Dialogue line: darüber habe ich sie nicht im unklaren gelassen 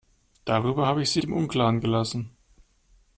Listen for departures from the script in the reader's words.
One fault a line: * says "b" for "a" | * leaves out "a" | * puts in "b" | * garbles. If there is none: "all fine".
* leaves out "nicht"